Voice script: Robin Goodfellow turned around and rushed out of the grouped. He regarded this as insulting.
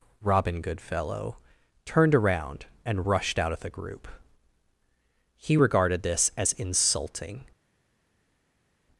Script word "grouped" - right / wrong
wrong